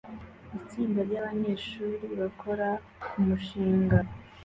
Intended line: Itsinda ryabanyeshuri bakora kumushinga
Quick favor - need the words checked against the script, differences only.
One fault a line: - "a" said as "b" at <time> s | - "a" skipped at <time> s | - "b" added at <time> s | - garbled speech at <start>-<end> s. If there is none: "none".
none